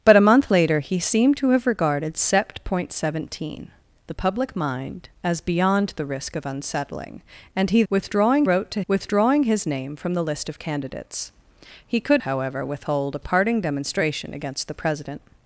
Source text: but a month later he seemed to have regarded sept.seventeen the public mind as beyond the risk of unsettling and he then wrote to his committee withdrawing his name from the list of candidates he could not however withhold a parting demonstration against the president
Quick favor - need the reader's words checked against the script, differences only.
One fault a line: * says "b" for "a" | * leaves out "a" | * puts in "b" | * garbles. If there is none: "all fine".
* says "withdrawing" for "then"
* leaves out "his committee"
* leaves out "not"